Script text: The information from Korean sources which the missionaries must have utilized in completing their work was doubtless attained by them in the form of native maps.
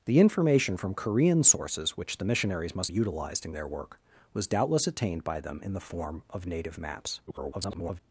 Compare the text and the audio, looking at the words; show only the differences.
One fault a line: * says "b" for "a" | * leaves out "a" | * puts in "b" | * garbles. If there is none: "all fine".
* leaves out "have"
* leaves out "completing"
* garbles